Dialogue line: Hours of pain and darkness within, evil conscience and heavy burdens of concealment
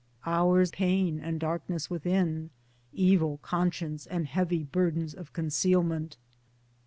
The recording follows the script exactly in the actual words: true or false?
false